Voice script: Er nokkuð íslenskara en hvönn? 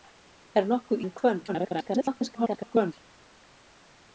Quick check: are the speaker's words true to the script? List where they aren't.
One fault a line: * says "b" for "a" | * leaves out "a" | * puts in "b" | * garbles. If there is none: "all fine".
* leaves out "íslenskara"
* garbles